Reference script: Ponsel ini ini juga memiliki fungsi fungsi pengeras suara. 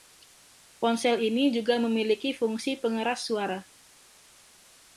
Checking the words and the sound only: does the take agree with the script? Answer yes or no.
no